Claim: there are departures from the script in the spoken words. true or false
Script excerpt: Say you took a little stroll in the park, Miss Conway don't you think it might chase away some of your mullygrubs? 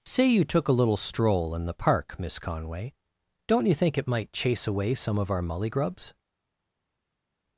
true